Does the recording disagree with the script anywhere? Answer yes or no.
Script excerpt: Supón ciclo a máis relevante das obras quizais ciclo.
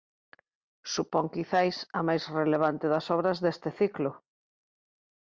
yes